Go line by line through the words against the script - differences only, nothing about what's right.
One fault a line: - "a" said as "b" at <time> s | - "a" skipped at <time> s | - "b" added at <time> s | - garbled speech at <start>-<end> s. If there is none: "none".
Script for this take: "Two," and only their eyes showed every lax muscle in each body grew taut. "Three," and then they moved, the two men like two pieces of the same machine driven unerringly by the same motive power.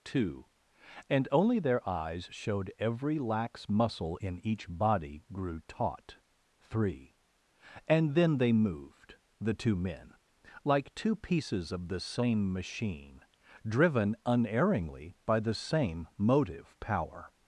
none